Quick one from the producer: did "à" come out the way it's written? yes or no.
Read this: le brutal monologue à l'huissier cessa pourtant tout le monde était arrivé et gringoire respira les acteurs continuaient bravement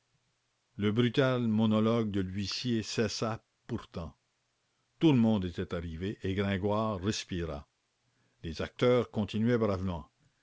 no